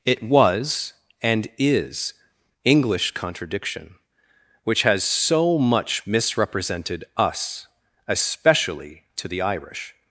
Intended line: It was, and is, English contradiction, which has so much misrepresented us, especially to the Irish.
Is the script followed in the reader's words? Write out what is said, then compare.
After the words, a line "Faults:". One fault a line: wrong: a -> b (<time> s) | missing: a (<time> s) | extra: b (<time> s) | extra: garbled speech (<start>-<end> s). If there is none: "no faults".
It was, and is, English contradiction, which has so much misrepresented us, especially to the Irish.
Faults:
no faults